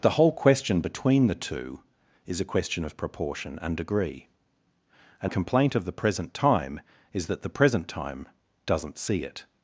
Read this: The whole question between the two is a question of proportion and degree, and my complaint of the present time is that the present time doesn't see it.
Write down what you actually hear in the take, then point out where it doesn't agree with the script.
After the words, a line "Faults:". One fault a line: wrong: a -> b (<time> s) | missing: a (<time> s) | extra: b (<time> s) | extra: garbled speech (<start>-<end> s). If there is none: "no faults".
The whole question between the two is a question of proportion and degree, and complaint of the present time is that the present time doesn't see it.
Faults:
missing: my (5.3 s)